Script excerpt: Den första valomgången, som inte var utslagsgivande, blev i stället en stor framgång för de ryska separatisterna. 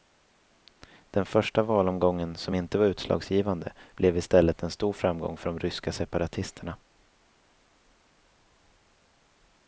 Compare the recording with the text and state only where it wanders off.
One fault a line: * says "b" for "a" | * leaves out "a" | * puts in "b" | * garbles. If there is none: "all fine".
all fine